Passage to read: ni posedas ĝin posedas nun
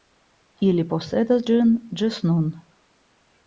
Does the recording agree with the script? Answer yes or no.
no